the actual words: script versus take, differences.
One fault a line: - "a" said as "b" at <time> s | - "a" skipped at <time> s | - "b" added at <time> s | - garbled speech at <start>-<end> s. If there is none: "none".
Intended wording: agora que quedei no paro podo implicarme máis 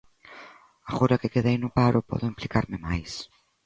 none